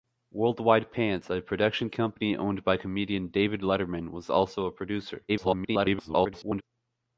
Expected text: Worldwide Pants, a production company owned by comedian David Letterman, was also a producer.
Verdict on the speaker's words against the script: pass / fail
fail